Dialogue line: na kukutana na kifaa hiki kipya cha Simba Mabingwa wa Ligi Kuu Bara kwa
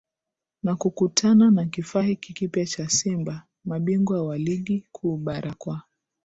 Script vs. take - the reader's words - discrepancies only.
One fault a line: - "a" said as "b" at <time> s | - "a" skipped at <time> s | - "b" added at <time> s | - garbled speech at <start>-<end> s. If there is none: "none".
none